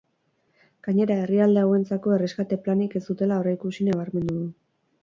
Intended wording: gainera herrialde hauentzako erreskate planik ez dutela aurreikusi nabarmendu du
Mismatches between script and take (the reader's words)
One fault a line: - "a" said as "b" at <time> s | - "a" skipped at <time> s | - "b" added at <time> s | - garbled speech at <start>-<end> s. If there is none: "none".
none